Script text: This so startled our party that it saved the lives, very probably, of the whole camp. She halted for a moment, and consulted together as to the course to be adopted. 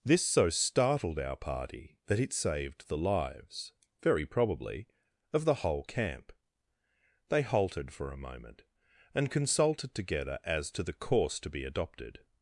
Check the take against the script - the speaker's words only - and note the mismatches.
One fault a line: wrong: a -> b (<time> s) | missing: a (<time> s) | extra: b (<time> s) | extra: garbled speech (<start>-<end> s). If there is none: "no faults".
wrong: She -> They (7.3 s)